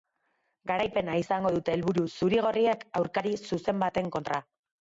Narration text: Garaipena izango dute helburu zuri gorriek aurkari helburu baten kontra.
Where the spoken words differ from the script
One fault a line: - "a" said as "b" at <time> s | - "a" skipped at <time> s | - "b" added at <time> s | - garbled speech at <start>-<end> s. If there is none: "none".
- "helburu" said as "zuzen" at 3.5 s